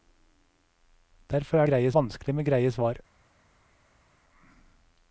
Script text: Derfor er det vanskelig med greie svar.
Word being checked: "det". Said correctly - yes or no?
no